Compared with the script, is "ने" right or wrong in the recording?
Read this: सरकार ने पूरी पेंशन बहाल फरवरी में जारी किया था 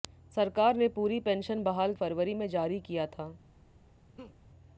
right